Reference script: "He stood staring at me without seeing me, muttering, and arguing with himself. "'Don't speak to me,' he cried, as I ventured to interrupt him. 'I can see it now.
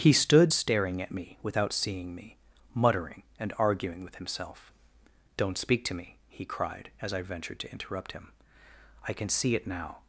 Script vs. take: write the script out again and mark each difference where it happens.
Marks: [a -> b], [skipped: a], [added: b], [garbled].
"He stood staring at me without seeing me, muttering, and arguing with himself. "'Don't speak to me,' he cried, as I ventured to interrupt him. 'I can see it now.